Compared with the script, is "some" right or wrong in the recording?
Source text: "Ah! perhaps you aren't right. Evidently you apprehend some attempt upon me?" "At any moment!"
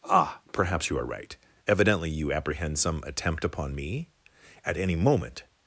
right